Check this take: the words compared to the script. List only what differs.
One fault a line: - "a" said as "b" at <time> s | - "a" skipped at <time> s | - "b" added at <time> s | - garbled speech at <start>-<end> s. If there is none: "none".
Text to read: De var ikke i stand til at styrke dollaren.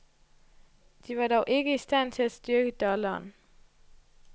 - "dog" added at 1.3 s